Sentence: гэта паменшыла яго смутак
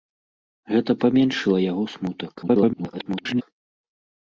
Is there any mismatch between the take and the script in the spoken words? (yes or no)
yes